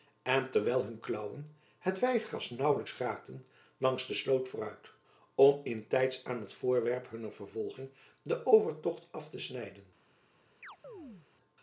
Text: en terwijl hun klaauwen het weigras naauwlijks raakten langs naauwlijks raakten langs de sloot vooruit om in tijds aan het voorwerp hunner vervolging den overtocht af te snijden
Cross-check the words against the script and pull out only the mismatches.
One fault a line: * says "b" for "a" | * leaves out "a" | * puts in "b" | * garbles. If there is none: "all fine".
* leaves out "naauwlijks raakten langs"